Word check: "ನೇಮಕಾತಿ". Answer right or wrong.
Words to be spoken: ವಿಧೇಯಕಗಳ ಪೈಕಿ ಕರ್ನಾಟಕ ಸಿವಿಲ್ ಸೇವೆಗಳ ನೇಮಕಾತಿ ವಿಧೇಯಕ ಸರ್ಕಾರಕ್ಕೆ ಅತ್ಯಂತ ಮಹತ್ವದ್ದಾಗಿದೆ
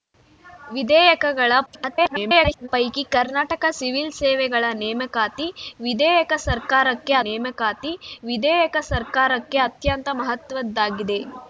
right